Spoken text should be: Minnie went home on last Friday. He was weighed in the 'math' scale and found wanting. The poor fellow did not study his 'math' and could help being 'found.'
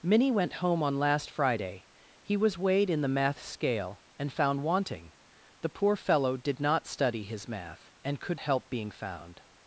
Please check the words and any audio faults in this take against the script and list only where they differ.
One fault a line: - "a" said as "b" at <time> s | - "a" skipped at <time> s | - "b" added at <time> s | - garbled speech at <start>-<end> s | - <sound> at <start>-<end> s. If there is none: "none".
none